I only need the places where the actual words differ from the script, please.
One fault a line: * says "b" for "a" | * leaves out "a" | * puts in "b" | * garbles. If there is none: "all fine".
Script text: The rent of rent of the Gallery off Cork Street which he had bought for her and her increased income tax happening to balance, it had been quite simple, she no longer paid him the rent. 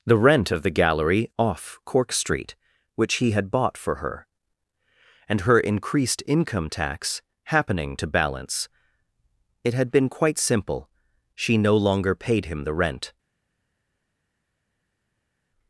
* leaves out "rent of"